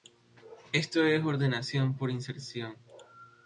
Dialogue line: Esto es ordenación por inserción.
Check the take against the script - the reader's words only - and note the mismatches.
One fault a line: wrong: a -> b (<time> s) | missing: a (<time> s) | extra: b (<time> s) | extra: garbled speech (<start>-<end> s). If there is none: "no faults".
no faults